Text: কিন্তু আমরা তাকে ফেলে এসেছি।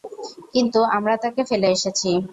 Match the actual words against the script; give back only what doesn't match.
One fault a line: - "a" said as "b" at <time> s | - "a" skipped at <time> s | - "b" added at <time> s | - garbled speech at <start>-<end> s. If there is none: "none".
none